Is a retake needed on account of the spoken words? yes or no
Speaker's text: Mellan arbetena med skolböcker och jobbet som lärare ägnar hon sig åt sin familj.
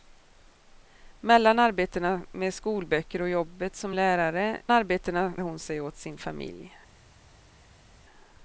yes